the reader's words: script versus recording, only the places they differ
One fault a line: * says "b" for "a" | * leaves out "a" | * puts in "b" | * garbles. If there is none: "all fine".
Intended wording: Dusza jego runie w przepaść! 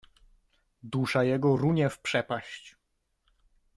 all fine